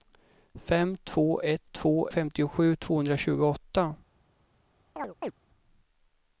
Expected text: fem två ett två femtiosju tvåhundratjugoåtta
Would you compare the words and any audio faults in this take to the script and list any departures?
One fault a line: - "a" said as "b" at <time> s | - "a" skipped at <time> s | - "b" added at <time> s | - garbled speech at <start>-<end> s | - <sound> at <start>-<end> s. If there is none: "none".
- chirp at 5.0-5.3 s